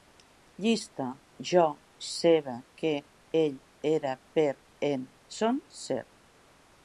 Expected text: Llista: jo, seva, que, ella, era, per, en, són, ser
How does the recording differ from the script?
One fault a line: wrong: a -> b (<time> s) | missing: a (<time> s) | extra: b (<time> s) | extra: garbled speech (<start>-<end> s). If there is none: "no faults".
wrong: ella -> ell (3.4 s)